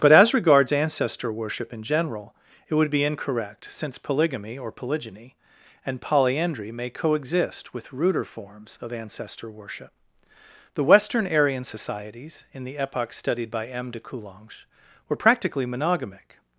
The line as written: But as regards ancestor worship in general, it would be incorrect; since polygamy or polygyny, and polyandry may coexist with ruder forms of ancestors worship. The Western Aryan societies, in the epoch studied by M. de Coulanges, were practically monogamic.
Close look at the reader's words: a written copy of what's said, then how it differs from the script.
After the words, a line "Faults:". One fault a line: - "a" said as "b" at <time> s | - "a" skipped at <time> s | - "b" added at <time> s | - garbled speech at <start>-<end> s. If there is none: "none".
But as regards ancestor worship in general, it would be incorrect; since polygamy or polygyny, and polyandry may coexist with ruder forms of ancestor worship. The Western Aryan societies, in the epoch studied by M. de Coulanges, were practically monogamic.
Faults:
- "ancestors" said as "ancestor" at 8.9 s